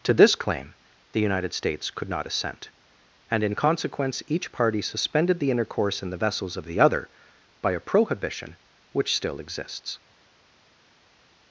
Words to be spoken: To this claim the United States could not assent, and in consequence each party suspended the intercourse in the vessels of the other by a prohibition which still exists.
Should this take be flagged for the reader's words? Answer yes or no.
no